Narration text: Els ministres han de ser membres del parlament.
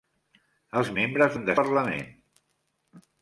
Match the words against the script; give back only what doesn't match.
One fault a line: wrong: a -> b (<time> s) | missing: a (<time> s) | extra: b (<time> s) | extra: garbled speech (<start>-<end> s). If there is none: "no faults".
wrong: ministres -> membres (1.0 s)
missing: ser membres del (1.6 s)